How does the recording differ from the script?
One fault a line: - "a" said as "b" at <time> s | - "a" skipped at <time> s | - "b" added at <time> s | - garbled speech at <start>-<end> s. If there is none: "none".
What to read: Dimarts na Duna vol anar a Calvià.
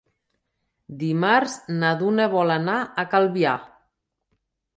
none